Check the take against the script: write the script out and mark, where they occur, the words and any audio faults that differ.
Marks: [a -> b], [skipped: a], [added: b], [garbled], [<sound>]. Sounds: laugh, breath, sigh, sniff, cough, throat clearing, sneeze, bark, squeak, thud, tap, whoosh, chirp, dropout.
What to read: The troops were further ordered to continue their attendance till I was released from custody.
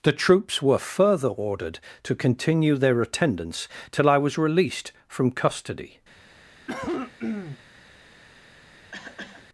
The troops were further ordered to continue their attendance till I was released from custody. [cough] [cough]